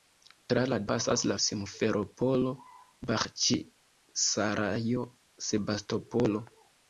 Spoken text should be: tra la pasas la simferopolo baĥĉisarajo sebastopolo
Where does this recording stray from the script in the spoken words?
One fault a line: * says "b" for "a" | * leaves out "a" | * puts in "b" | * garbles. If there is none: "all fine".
all fine